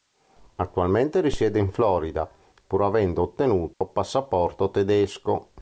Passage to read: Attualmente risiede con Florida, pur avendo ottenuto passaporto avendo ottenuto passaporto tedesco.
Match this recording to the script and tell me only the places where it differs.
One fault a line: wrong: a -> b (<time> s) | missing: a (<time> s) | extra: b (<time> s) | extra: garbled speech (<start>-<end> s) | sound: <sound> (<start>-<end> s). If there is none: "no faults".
wrong: con -> in (1.6 s)
sound: dropout (3.7-3.8 s)
missing: avendo ottenuto passaporto (4.7 s)